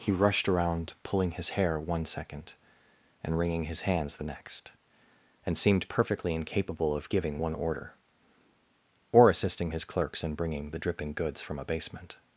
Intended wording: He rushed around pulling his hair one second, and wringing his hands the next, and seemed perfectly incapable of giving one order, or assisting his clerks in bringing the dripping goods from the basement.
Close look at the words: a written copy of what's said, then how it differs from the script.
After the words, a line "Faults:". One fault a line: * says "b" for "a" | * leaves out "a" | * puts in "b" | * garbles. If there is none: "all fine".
He rushed around pulling his hair one second, and wringing his hands the next, and seemed perfectly incapable of giving one order, or assisting his clerks in bringing the dripping goods from a basement.
Faults:
* says "a" for "the"